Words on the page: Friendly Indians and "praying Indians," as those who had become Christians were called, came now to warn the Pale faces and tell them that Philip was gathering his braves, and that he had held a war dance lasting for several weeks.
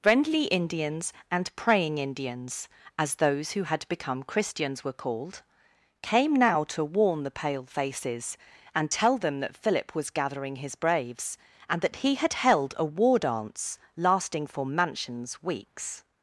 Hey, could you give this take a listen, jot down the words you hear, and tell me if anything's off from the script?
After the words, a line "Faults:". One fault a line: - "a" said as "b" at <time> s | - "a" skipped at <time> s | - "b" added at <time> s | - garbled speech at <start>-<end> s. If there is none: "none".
Friendly Indians and "praying Indians," as those who had become Christians were called, came now to warn the Pale faces and tell them that Philip was gathering his braves, and that he had held a war dance lasting for mansions weeks.
Faults:
- "several" said as "mansions" at 14.6 s